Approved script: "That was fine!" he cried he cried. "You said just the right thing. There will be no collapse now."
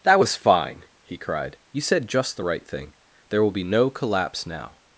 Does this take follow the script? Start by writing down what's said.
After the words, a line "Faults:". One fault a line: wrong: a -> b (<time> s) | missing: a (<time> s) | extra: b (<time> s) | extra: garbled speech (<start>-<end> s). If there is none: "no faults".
"That was fine!" he cried. "You said just the right thing. There will be no collapse now."
Faults:
missing: he cried (1.6 s)